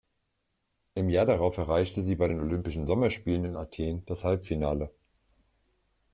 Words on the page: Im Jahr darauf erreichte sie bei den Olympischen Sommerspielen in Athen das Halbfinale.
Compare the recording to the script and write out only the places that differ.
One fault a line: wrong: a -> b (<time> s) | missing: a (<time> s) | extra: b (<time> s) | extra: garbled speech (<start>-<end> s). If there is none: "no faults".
no faults